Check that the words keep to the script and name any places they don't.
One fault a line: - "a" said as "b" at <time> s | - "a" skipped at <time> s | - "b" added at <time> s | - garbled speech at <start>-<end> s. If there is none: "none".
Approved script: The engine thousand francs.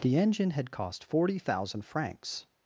- "had cost forty" added at 0.5 s